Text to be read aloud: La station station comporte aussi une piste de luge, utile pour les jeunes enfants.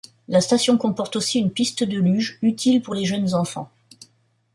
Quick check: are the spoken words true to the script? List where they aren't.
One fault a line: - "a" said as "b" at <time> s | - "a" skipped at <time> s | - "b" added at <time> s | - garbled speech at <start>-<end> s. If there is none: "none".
- "station" skipped at 0.8 s